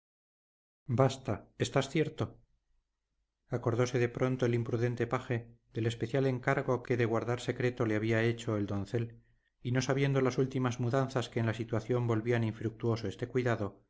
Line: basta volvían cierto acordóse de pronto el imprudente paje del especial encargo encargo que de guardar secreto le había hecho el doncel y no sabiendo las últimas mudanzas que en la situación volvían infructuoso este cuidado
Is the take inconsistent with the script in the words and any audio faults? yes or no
yes